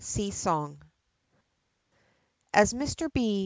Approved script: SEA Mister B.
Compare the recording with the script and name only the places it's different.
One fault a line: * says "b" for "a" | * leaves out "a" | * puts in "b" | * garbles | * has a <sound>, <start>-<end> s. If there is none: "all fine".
* puts in "SONG As"